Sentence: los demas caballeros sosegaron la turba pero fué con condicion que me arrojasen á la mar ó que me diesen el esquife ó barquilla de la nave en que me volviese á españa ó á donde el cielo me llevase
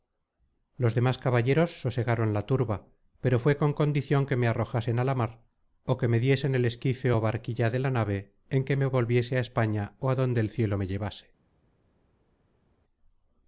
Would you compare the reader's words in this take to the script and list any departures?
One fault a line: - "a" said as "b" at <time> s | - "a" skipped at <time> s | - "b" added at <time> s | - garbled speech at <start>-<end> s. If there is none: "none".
none